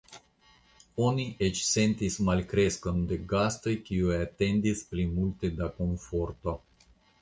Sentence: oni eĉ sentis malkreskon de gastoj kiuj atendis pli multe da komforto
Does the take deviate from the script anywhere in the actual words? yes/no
no